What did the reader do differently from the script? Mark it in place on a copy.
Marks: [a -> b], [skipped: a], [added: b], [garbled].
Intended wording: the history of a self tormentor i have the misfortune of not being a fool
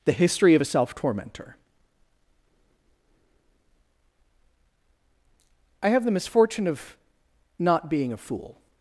the history of a self tormentor i have the misfortune of not being a fool